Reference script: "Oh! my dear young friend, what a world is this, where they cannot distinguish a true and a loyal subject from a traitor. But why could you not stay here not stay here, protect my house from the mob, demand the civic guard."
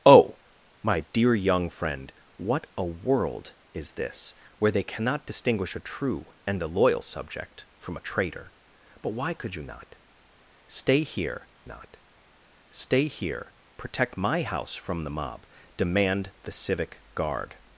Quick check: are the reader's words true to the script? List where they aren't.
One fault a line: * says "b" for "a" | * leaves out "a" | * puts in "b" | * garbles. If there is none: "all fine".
all fine